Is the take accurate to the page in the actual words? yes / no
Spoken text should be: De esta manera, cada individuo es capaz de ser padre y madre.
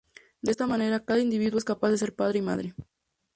yes